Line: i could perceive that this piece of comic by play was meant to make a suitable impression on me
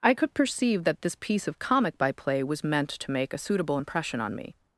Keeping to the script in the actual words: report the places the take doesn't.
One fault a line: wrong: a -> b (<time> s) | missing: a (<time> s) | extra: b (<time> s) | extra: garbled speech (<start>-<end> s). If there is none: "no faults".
no faults